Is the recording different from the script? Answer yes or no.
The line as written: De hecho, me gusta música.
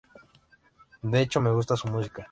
yes